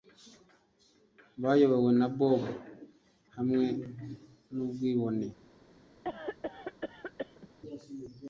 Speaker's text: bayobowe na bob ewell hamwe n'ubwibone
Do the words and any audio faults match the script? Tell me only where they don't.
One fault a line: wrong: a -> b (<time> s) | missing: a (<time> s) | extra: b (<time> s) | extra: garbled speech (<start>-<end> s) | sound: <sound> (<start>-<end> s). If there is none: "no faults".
missing: ewell (2.4 s)
sound: cough (6.0-7.5 s)